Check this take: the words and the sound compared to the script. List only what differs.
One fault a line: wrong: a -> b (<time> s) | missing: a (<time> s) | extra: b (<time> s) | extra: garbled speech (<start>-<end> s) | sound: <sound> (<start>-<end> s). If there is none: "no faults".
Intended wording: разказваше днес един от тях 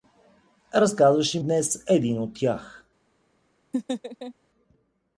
sound: laugh (3.7-4.3 s)